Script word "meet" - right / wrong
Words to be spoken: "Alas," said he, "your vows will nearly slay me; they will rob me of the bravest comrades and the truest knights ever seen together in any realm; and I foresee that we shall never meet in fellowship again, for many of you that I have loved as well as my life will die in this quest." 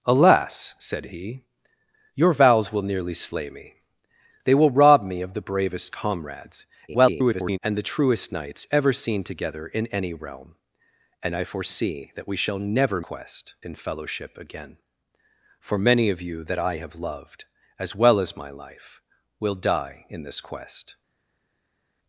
wrong